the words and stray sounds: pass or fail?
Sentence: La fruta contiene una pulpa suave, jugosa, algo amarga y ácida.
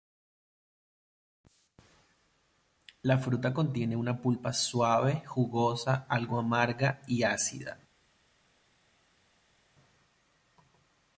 pass